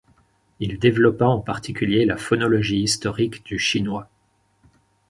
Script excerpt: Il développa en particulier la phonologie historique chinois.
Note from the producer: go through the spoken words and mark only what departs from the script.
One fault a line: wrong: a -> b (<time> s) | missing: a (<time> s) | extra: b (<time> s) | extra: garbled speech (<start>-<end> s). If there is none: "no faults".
extra: du (3.5 s)